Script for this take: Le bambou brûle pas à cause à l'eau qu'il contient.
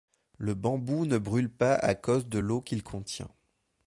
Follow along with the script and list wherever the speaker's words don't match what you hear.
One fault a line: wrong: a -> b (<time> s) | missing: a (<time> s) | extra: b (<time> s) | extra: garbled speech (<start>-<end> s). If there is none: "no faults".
extra: ne (1.1 s)
wrong: à -> de (2.3 s)